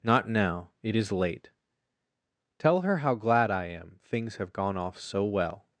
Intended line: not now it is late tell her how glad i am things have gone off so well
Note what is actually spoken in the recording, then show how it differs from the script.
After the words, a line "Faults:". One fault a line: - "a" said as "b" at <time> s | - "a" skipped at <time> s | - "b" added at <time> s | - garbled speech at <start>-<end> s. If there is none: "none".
not now it is late tell her how glad i am things have gone off so well
Faults:
none